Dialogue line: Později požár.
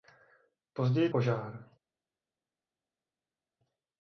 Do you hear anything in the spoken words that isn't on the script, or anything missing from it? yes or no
no